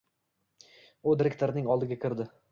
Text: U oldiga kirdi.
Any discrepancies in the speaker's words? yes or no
yes